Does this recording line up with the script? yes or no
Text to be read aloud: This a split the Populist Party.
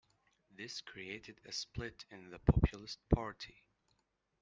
no